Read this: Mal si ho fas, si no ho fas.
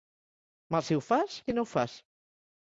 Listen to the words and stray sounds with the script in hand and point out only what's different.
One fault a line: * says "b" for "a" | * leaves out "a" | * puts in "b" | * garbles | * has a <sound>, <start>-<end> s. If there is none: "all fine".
all fine